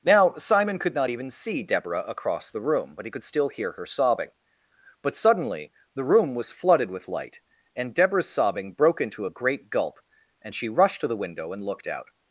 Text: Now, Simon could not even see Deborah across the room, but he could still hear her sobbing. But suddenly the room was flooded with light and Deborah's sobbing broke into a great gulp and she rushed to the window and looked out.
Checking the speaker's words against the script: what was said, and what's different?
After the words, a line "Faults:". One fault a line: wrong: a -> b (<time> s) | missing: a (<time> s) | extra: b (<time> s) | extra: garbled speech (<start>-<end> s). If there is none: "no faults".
Now, Simon could not even see Deborah across the room, but he could still hear her sobbing. But suddenly the room was flooded with light and Deborah's sobbing broke into a great gulp and she rushed to the window and looked out.
Faults:
no faults